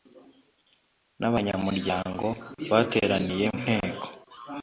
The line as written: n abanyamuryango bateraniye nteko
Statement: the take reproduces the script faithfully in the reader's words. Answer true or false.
true